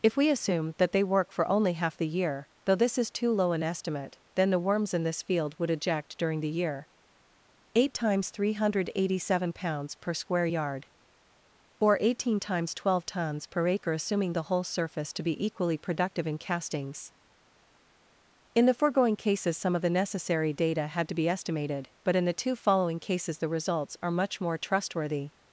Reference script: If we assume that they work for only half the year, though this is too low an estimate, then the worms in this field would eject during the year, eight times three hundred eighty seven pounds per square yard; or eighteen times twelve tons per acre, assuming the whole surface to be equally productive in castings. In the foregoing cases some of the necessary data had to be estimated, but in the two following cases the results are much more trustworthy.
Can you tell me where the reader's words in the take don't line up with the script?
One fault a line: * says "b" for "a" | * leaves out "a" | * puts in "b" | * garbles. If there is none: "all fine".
all fine